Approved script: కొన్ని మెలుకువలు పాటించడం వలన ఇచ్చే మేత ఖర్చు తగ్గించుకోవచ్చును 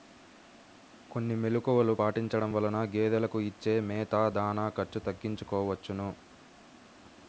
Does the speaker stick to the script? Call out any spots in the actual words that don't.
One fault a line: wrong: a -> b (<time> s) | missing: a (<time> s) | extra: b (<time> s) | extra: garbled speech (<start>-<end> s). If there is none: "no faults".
extra: గేదెలకు (2.9 s)
extra: దాణా (4.4 s)